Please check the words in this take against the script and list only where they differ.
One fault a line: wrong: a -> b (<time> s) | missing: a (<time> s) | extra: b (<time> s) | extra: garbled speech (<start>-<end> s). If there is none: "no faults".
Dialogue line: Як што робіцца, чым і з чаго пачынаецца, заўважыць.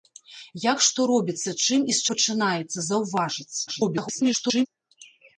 missing: чаго (2.1 s)
extra: garbled speech (3.7-4.7 s)